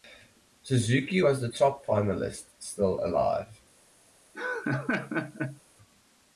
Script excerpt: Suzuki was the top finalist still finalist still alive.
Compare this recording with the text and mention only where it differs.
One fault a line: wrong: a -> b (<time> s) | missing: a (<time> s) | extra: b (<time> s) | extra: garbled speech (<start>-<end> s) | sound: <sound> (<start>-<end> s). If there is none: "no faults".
missing: finalist still (3.0 s)
sound: laugh (4.3-5.6 s)